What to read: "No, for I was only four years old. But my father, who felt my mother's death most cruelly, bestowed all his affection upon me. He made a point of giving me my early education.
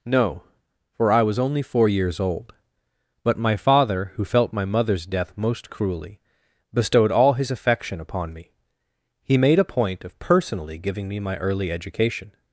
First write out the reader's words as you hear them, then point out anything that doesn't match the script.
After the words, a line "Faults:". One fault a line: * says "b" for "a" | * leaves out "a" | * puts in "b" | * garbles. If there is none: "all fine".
"No, for I was only four years old. But my father, who felt my mother's death most cruelly, bestowed all his affection upon me. He made a point of personally giving me my early education.
Faults:
* puts in "personally"